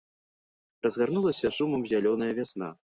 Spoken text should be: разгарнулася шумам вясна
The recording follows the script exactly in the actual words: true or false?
false